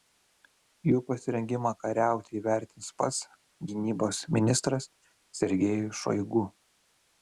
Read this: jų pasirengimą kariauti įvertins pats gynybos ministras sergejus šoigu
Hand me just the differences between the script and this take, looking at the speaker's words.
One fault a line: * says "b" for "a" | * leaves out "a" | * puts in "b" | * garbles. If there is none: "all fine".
all fine